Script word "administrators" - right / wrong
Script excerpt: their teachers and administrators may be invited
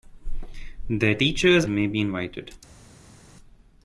wrong